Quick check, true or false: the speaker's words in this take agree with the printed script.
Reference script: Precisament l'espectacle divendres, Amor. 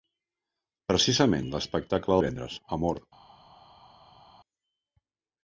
true